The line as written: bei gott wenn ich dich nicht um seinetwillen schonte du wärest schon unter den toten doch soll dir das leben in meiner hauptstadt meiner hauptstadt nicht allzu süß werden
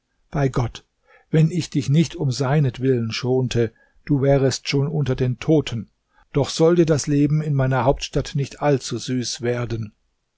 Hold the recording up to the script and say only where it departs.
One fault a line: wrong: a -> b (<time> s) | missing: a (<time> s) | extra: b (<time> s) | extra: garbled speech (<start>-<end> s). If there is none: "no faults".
missing: meiner hauptstadt (8.3 s)